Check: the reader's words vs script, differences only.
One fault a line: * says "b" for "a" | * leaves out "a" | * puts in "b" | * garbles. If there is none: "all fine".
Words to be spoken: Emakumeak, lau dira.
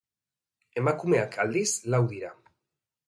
* puts in "aldiz"